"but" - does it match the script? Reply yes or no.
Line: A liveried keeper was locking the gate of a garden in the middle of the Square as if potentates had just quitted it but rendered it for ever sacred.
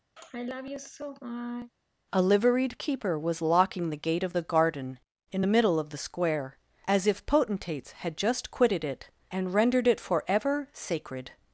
no